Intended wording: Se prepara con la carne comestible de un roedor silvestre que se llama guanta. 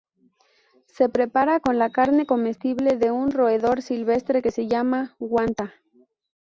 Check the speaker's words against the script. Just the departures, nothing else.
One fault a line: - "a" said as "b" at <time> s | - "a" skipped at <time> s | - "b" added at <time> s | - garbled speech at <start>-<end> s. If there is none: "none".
none